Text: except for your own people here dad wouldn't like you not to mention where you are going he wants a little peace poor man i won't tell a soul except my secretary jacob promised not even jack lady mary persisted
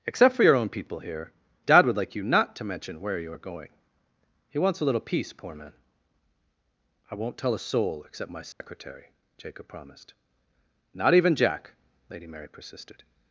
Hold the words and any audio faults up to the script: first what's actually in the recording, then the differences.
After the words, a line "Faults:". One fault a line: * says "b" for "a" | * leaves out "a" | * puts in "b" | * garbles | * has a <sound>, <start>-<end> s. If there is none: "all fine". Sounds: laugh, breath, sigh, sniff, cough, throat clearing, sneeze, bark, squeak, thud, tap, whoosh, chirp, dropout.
except for your own people here dad would like you not to mention where you are going he wants a little peace poor man i won't tell a soul except my secretary jacob promised not even jack lady mary persisted
Faults:
* says "would" for "wouldn't"
* has a dropout, 8.5-8.6 s